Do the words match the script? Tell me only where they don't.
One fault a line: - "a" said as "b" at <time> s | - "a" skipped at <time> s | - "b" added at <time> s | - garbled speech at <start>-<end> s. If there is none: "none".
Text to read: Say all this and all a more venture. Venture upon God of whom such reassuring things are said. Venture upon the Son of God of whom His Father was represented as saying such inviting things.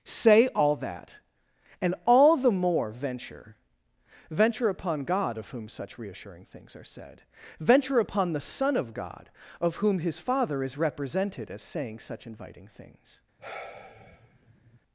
- "this" said as "that" at 0.8 s
- "a" said as "the" at 2.4 s
- "was" said as "is" at 10.6 s